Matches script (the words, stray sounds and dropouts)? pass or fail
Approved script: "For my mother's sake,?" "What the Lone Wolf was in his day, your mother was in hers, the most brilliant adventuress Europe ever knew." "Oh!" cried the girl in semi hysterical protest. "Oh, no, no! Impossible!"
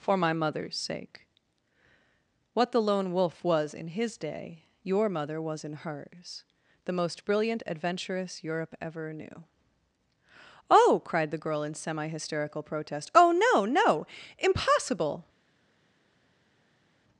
pass